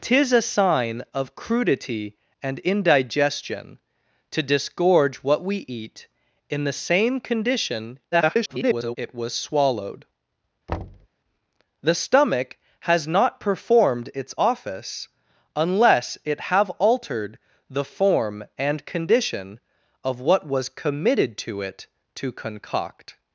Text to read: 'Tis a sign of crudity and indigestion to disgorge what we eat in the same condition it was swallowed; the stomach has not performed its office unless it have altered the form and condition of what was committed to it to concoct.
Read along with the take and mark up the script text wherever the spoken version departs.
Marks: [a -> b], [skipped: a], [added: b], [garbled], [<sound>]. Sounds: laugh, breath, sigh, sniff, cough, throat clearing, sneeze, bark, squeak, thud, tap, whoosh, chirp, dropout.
'Tis a sign of crudity and indigestion to disgorge what we eat in the same condition [garbled] it was swallowed; [thud] the stomach has not performed its office unless it have altered the form and condition of what was committed to it to concoct.